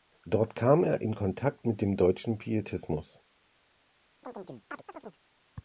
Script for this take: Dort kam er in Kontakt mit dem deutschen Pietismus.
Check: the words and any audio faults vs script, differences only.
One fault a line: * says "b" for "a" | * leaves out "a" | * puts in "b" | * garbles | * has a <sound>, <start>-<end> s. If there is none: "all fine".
* has a chirp, 4.2-5.2 s